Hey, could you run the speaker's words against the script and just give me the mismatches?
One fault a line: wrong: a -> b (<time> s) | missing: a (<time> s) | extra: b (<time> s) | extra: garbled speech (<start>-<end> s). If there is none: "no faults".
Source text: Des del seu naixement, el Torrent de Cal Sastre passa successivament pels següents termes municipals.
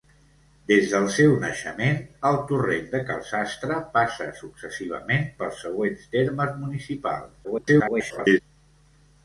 extra: garbled speech (7.4-8.4 s)